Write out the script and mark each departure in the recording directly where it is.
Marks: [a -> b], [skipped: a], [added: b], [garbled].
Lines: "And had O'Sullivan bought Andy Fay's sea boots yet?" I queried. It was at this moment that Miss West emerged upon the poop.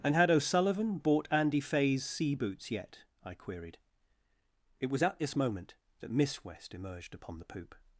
"And had O'Sullivan bought Andy Fay's sea boots yet?" I queried. It was at this moment that Miss West emerged upon the poop.